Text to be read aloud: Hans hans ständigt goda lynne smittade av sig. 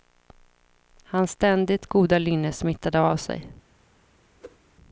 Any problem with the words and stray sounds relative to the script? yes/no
yes